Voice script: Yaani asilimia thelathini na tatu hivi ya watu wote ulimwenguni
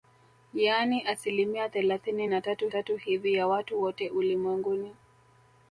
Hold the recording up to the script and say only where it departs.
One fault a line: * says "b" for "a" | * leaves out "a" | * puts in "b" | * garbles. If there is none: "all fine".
* puts in "tatu"